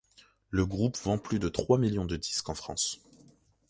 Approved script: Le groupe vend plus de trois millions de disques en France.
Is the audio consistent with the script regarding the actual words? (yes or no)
yes